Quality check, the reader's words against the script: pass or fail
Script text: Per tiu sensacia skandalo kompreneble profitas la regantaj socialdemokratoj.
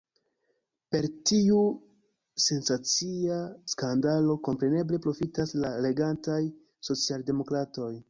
pass